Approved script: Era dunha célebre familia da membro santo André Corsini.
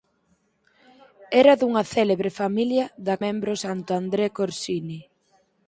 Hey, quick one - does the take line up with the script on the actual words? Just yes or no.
yes